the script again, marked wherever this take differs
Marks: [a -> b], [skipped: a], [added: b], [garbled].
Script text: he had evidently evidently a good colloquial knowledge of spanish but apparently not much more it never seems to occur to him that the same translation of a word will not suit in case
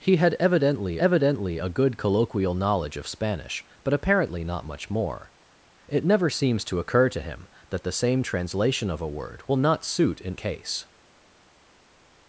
he had evidently evidently a good colloquial knowledge of spanish but apparently not much more it never seems to occur to him that the same translation of a word will not suit in case